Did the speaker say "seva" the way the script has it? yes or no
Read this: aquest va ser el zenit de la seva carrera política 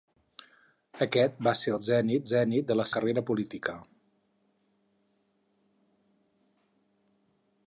no